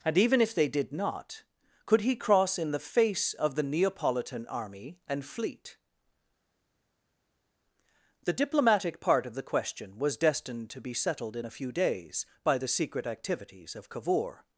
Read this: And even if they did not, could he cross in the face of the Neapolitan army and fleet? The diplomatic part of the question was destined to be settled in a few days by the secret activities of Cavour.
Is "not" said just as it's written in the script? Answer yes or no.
yes